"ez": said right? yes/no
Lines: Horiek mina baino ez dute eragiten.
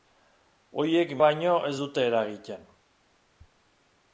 yes